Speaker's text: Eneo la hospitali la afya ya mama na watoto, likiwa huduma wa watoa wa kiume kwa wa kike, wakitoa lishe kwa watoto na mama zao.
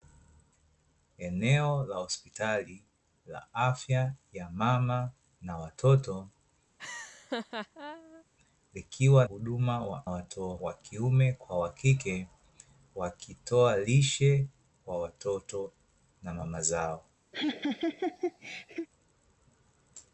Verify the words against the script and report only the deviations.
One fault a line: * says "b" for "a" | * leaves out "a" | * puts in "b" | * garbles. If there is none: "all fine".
all fine